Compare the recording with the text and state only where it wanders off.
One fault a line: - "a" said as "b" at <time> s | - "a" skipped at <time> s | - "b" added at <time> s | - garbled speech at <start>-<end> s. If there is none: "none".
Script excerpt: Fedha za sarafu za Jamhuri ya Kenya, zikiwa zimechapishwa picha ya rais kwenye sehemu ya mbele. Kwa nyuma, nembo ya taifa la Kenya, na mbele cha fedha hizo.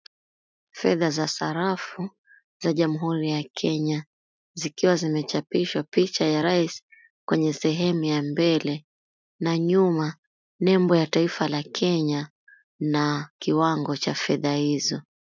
- "Kwa" said as "Na" at 9.4 s
- "mbele" said as "kiwango" at 13.4 s